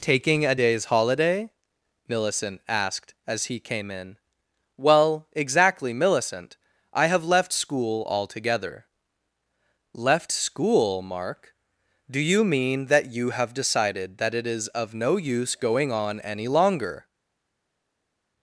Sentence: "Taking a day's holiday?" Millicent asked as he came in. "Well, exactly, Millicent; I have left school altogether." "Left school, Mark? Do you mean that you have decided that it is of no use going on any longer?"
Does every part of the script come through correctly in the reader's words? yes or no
yes